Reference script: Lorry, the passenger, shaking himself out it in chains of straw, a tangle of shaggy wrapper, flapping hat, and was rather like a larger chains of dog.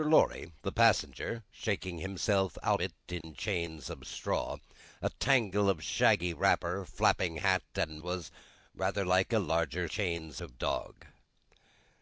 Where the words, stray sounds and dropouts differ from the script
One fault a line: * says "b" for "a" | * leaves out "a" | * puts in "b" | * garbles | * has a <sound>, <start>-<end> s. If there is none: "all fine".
* has a dropout, 3.2-3.2 s